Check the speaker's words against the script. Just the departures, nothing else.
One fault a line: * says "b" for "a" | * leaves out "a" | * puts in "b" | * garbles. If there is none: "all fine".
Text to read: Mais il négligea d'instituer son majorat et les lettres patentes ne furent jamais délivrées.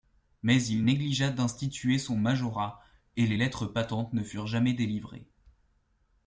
all fine